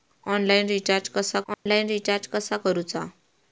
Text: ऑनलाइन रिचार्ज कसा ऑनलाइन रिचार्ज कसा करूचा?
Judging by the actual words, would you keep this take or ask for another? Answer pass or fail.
pass